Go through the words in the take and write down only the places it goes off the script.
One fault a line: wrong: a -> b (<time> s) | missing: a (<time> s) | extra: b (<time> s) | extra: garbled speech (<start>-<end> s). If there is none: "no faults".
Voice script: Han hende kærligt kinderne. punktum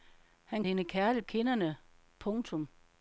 no faults